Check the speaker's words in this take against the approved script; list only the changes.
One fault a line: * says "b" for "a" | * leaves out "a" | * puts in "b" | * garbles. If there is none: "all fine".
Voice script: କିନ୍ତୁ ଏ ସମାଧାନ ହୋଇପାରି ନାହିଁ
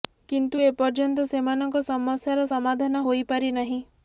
* puts in "ପର୍ଯ୍ୟନ୍ତ ସେମାନଙ୍କ ସମସ୍ୟାର"